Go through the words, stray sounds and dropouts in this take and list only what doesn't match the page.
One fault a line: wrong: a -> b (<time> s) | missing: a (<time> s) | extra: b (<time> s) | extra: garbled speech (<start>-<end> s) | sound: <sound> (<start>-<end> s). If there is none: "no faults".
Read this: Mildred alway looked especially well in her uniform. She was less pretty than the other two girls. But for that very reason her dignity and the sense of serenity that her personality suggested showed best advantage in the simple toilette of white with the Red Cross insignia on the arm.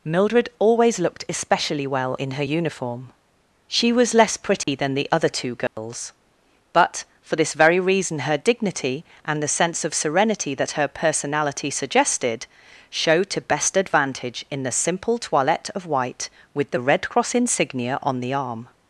wrong: alway -> always (0.6 s)
sound: dropout (4.6-4.7 s)
sound: dropout (5.7-5.8 s)
wrong: that -> this (7.4 s)
extra: to (13.3 s)